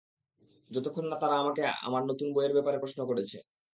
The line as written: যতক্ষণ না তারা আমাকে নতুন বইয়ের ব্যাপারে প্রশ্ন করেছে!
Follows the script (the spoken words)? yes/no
no